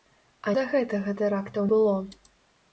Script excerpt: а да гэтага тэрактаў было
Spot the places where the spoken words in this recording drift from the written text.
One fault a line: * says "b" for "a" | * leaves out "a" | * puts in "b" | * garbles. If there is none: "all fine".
all fine